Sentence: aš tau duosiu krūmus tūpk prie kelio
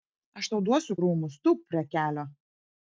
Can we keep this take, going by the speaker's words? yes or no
yes